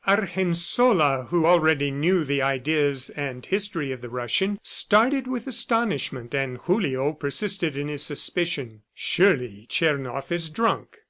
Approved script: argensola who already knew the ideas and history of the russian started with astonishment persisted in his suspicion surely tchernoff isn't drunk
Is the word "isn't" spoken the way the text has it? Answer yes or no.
no